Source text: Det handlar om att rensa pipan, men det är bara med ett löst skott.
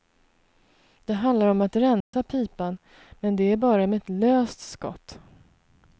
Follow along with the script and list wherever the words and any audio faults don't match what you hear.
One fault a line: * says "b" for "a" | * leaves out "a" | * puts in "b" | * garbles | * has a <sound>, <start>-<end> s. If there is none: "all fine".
* has a dropout, 2.0-2.1 s